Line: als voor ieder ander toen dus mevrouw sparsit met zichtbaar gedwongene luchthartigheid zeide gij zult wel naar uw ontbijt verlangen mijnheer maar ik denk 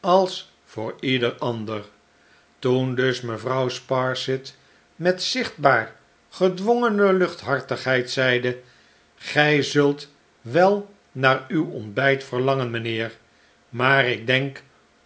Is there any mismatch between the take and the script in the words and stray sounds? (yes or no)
no